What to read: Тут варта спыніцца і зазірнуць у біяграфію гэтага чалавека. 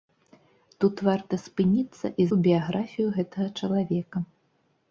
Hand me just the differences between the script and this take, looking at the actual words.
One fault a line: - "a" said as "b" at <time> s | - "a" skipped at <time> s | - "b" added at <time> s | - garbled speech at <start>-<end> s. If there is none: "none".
- "зазірнуць" skipped at 2.3 s